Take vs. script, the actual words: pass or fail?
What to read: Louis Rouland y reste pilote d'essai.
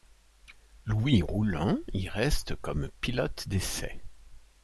fail